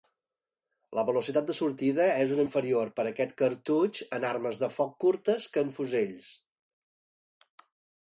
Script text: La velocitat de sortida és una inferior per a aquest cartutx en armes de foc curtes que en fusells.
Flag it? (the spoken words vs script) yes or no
no